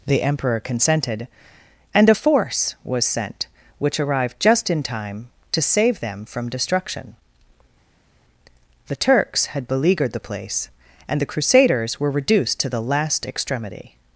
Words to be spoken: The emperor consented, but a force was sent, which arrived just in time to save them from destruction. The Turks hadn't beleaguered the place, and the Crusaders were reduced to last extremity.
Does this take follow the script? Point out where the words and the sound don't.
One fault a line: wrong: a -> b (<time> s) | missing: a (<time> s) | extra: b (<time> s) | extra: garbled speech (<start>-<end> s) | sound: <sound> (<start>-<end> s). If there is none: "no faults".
wrong: but -> and (1.9 s)
wrong: hadn't -> had (9.5 s)
extra: the (12.7 s)